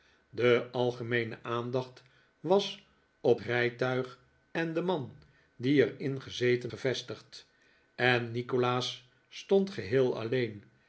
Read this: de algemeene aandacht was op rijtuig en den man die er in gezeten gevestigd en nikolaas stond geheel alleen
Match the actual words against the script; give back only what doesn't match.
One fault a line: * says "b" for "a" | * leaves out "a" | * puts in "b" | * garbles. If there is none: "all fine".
all fine